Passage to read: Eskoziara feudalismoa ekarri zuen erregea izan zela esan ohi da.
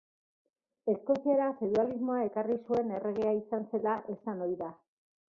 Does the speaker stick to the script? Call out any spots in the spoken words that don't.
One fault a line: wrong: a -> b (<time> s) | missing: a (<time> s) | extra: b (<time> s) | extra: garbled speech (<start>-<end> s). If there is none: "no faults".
no faults